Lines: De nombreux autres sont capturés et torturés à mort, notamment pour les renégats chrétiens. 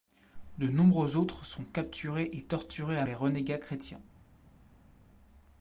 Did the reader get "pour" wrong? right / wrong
wrong